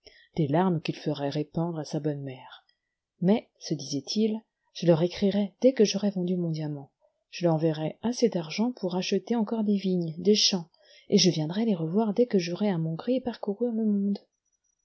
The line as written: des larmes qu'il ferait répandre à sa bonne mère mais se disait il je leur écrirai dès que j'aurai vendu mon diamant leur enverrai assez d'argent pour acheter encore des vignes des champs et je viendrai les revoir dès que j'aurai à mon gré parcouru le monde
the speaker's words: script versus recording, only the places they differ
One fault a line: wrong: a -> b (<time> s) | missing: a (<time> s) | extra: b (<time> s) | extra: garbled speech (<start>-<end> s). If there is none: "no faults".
extra: je (7.3 s)